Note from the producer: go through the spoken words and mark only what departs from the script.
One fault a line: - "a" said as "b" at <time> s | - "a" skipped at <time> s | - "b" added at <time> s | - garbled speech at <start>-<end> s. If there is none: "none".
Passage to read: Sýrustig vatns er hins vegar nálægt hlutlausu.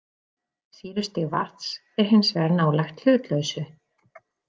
none